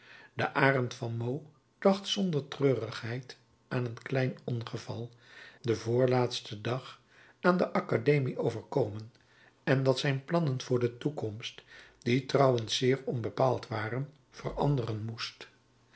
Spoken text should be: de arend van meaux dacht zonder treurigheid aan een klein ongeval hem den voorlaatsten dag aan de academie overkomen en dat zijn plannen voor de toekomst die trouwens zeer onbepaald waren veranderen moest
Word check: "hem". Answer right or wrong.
wrong